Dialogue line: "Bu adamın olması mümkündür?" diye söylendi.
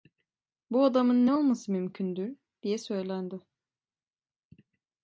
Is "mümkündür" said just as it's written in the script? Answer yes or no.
yes